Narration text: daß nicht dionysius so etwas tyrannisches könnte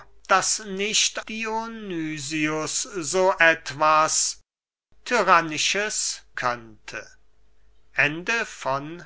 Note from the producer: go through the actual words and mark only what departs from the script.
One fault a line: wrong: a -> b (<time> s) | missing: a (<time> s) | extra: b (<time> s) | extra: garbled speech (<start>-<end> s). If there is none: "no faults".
no faults